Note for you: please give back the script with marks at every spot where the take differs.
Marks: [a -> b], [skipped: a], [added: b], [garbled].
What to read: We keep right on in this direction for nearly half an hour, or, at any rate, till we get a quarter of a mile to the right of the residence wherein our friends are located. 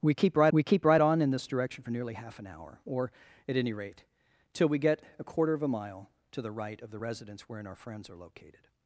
We keep right [added: we keep right] on in this direction for nearly half an hour, or, at any rate, till we get a quarter of a mile to the right of the residence wherein our friends are located.